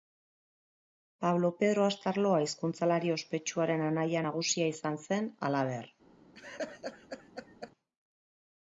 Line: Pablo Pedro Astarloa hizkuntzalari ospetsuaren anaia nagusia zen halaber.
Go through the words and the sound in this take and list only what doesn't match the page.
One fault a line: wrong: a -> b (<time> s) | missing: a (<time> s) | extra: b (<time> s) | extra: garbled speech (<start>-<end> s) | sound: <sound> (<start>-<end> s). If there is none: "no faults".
extra: izan (4.8 s)
sound: laugh (6.3-7.7 s)